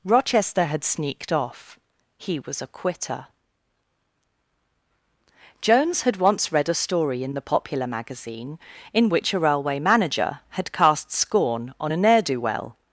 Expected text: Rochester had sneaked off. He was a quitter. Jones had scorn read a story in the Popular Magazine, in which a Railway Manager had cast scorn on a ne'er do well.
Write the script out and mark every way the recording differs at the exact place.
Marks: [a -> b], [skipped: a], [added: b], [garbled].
Rochester had sneaked off. He was a quitter. Jones had [scorn -> once] read a story in the Popular Magazine, in which a Railway Manager had cast scorn on a ne'er do well.